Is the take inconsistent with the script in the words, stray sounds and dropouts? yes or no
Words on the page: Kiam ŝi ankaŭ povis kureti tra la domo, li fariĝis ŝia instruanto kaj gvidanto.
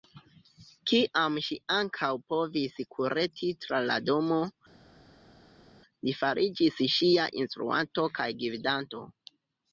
no